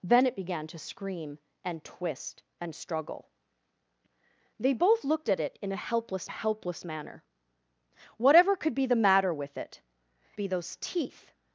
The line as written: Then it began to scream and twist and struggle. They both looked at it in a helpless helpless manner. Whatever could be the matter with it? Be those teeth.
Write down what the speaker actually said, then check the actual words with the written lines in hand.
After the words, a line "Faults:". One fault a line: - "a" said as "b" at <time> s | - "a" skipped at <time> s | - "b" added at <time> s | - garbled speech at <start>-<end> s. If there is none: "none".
Then it began to scream and twist and struggle. They both looked at it in a helpless helpless manner. Whatever could be the matter with it? Be those teeth.
Faults:
none